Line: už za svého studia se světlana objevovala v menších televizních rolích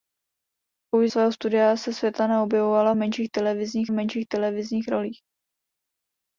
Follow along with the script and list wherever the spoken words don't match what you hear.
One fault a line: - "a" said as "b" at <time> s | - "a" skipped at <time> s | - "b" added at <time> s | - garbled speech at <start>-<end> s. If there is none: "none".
- "za" skipped at 1.1 s
- "menších televizních" added at 3.9 s